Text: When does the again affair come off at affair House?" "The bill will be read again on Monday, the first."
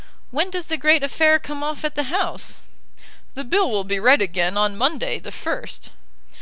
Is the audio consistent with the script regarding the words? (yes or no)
no